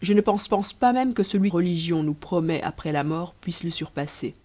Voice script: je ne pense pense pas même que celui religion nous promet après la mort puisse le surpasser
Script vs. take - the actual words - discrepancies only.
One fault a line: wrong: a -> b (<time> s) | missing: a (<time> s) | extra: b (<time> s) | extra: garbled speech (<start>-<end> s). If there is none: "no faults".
no faults